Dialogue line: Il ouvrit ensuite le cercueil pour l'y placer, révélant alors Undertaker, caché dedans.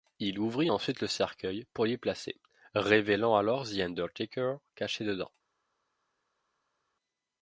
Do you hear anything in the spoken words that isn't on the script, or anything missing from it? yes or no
yes